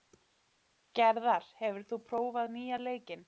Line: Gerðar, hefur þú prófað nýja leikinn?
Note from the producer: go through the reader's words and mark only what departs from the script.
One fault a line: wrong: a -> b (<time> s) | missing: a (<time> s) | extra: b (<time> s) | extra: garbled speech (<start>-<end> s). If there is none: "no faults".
no faults